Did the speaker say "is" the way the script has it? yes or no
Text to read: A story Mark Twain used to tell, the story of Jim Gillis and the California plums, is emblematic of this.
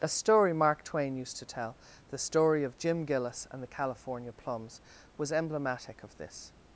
no